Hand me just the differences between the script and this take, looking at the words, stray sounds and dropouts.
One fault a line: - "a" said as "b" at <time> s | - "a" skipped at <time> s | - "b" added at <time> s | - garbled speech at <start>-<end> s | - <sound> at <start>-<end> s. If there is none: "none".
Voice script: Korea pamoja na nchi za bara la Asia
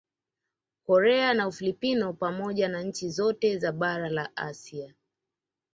- "na Ufilipino" added at 1.3 s
- "zote" added at 3.1 s